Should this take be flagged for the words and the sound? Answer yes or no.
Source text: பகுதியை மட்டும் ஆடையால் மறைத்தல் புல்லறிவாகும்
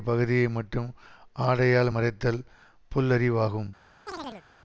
yes